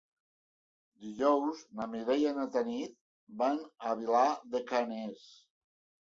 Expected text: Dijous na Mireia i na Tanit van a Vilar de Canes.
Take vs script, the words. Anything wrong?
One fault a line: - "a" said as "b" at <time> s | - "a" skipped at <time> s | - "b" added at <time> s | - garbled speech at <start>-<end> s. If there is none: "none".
none